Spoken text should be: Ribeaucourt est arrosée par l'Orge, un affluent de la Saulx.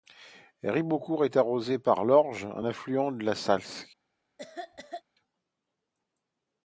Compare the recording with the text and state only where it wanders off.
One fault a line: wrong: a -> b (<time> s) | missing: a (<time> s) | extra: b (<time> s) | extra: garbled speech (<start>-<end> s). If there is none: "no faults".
no faults